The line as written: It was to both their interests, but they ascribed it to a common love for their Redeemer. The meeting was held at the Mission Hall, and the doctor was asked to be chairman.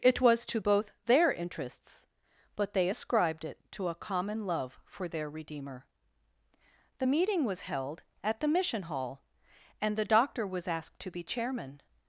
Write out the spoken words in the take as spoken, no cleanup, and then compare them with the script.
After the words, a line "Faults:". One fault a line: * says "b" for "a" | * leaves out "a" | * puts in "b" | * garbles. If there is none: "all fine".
It was to both their interests, but they ascribed it to a common love for their Redeemer. The meeting was held at the Mission Hall, and the doctor was asked to be chairman.
Faults:
all fine